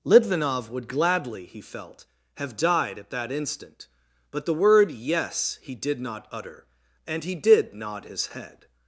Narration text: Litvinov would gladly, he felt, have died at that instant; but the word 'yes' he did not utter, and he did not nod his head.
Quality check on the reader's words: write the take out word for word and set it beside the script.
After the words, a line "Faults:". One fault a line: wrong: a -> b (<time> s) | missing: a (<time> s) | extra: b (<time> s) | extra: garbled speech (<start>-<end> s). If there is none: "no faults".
Litvinov would gladly, he felt, have died at that instant; but the word 'yes' he did not utter, and he did nod his head.
Faults:
missing: not (7.7 s)